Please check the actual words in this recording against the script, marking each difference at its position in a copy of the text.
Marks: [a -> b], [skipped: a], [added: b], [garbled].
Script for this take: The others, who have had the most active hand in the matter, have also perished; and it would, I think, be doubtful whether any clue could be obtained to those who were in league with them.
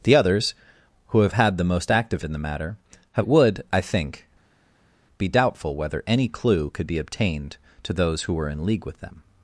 The others, who have had the most active [skipped: hand] in the matter, have [skipped: also perished; and] it would, I think, be doubtful whether any clue could be obtained to those who were in league with them.